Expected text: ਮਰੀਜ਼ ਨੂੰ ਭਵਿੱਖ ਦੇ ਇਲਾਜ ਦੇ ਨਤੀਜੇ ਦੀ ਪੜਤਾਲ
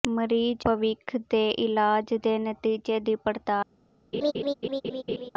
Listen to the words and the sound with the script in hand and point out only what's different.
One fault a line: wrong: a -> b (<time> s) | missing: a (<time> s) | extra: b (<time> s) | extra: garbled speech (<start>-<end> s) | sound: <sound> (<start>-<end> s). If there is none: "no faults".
missing: ਨੂੰ (0.7 s)
sound: laugh (4.1-5.3 s)